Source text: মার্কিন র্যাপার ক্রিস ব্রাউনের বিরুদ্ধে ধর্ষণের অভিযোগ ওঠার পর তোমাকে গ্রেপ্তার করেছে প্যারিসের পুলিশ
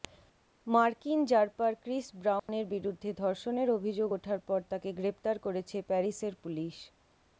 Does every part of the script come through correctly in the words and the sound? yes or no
no